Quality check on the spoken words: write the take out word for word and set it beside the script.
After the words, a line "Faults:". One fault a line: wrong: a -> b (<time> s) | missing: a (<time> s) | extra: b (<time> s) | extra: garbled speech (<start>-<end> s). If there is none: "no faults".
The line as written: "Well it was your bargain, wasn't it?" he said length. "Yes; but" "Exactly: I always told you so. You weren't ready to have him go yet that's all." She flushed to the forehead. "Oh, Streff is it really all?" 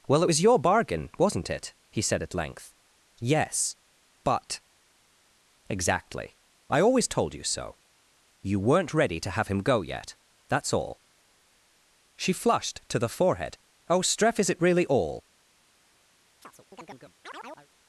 "Well it was your bargain, wasn't it?" he said at length. "Yes; but" "Exactly: I always told you so. You weren't ready to have him go yet that's all." She flushed to the forehead. "Oh, Streff is it really all?"
Faults:
extra: at (2.2 s)